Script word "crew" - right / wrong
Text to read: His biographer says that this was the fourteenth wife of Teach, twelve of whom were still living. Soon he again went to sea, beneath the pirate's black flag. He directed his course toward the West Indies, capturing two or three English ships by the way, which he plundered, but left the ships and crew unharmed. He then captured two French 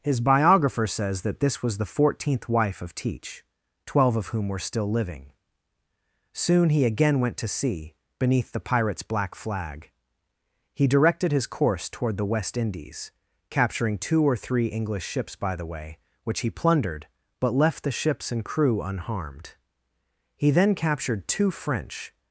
right